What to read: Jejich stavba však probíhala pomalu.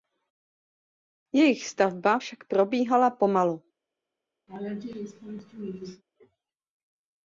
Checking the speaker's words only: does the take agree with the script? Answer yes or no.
yes